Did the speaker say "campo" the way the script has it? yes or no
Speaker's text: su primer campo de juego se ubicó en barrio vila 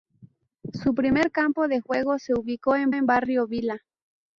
yes